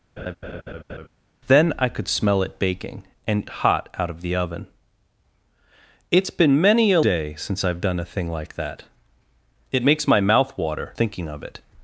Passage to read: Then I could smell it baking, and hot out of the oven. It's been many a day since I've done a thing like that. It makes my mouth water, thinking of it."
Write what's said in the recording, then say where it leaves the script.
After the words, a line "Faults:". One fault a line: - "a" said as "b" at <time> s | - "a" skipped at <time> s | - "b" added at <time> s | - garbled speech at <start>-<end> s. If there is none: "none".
Then I could smell it baking, and hot out of the oven. It's been many a day since I've done a thing like that. It makes my mouth water, thinking of it."
Faults:
none